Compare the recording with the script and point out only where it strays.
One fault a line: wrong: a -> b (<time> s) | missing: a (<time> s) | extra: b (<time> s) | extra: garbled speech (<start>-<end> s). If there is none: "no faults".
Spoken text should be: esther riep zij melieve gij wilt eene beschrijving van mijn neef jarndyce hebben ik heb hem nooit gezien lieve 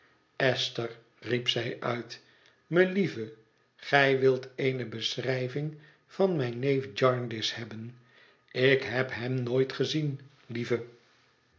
extra: uit (1.8 s)